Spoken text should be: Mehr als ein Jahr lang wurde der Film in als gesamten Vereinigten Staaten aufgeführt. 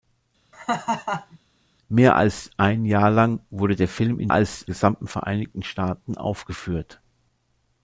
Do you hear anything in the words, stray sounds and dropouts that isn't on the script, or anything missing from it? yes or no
yes